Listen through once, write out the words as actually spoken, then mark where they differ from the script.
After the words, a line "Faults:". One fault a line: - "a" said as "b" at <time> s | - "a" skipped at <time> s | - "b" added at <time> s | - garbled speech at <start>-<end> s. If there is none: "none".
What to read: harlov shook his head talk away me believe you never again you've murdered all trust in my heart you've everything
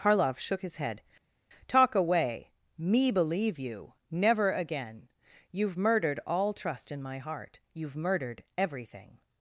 harlov shook his head talk away me believe you never again you've murdered all trust in my heart you've murdered everything
Faults:
- "murdered" added at 8.0 s